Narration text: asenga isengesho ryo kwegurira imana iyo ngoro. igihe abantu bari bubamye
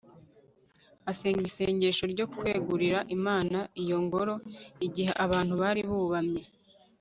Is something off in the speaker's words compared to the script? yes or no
no